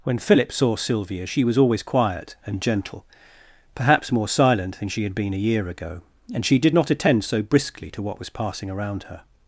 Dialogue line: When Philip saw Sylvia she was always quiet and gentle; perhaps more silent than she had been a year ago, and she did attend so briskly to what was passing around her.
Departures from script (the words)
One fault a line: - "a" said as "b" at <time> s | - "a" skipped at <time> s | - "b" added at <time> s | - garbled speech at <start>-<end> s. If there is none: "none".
- "not" added at 6.7 s